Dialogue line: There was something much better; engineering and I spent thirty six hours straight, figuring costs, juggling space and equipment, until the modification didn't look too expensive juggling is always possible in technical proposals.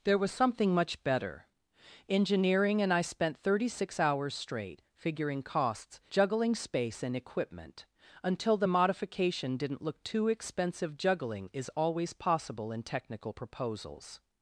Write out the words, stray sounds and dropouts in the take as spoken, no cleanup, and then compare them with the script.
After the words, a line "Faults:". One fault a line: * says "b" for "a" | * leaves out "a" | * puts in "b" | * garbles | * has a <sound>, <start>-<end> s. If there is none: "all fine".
There was something much better; engineering and I spent thirty six hours straight, figuring costs, juggling space and equipment, until the modification didn't look too expensive juggling is always possible in technical proposals.
Faults:
all fine